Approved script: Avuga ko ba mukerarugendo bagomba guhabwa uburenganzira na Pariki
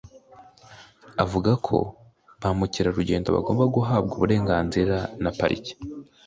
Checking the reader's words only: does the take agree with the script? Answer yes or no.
yes